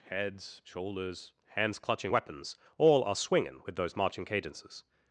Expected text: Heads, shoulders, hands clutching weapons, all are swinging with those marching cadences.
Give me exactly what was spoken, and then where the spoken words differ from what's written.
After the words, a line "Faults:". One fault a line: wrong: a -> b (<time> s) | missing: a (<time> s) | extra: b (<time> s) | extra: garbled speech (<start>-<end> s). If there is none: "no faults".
Heads, shoulders, hands clutching weapons, all are swinging with those marching cadences.
Faults:
no faults